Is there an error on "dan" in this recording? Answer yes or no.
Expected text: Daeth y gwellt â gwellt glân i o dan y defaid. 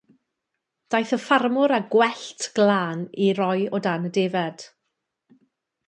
no